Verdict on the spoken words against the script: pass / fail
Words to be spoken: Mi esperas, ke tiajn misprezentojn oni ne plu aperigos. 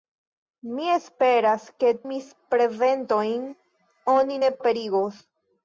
fail